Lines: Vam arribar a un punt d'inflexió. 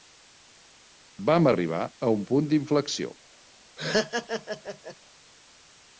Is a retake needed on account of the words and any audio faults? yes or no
yes